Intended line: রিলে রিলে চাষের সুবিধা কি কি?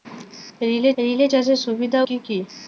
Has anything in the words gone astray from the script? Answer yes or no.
no